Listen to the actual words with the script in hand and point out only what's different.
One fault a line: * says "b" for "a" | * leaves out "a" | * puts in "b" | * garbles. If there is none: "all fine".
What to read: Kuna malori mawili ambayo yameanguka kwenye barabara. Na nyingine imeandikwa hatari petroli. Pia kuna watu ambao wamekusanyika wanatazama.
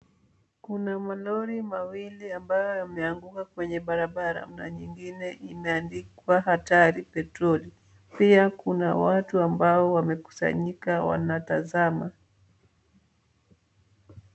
all fine